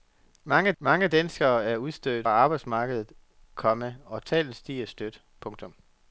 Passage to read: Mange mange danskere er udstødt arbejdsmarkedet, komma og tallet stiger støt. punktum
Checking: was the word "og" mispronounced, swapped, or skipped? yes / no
no